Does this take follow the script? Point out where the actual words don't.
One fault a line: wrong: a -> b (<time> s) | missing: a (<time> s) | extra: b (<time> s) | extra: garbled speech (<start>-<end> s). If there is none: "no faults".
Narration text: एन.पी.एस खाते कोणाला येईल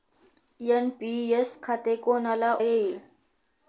no faults